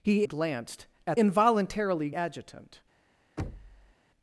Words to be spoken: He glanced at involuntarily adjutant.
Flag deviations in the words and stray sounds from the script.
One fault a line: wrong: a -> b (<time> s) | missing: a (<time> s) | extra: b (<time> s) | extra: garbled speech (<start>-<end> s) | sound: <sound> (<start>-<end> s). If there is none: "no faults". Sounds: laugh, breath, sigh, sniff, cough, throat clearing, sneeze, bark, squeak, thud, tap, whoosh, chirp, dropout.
sound: thud (3.4-3.9 s)